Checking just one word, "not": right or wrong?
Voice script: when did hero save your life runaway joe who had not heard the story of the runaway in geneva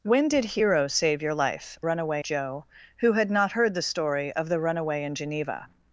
right